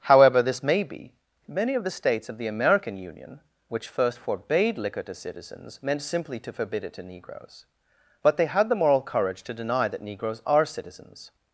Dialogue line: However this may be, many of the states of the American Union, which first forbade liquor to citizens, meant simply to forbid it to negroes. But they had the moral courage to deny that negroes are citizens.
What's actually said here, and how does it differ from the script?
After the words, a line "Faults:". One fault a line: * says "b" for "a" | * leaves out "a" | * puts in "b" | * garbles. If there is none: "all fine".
However this may be, many of the states of the American Union, which first forbade liquor to citizens, meant simply to forbid it to negroes. But they had the moral courage to deny that negroes are citizens.
Faults:
all fine